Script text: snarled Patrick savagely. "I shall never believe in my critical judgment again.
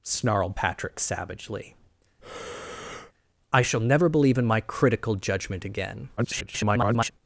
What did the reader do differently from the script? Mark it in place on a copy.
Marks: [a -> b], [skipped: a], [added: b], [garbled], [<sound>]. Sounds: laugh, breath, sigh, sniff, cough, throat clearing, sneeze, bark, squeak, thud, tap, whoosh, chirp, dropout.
snarled Patrick savagely. [breath] "I shall never believe in my critical judgment again. [garbled]